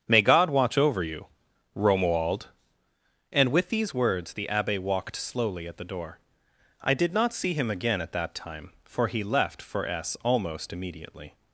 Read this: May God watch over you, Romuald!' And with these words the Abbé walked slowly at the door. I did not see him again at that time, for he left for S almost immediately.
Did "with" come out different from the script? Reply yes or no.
no